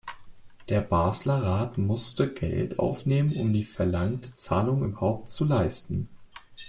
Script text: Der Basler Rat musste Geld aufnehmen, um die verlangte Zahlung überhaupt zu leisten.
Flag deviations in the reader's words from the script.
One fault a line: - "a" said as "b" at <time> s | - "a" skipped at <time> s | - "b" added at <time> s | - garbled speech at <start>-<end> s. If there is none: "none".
none